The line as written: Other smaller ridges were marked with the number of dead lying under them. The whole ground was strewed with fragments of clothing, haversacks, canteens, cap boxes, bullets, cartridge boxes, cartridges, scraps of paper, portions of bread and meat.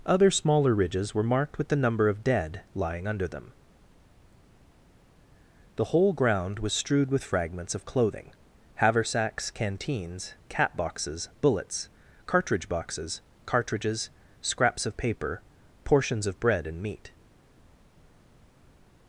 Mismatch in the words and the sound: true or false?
false